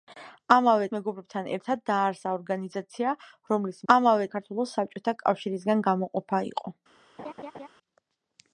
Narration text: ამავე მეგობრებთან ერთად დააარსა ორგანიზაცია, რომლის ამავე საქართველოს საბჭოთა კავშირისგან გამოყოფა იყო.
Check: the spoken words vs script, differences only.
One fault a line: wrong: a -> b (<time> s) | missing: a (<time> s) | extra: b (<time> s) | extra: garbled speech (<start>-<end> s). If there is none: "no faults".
no faults